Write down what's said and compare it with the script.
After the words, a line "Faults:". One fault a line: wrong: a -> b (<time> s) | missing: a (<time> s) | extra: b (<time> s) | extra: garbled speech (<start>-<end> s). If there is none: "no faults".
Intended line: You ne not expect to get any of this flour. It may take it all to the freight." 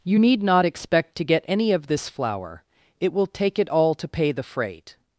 You need not expect to get any of this flour. It will take it all to pay the freight."
Faults:
wrong: ne -> need (0.2 s)
wrong: may -> will (3.1 s)
extra: pay (4.1 s)